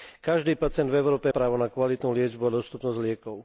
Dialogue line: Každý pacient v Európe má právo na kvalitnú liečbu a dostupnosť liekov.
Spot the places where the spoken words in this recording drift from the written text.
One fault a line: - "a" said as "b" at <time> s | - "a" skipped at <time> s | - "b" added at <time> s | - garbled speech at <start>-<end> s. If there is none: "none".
- "má" skipped at 1.3 s